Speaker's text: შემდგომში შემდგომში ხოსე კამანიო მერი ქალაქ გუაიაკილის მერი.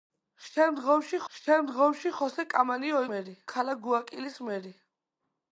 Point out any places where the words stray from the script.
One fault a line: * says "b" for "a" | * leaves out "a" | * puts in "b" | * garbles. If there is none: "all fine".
all fine